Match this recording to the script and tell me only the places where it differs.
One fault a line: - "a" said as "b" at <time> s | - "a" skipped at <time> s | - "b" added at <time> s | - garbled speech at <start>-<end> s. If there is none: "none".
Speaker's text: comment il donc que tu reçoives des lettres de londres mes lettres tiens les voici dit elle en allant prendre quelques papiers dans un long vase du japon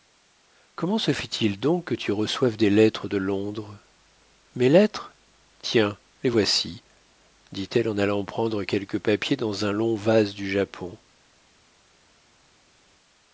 - "se fait" added at 1.0 s